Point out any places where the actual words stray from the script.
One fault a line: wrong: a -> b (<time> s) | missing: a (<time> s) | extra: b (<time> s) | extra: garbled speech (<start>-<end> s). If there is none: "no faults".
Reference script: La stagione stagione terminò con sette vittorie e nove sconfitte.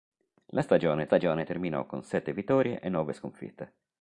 no faults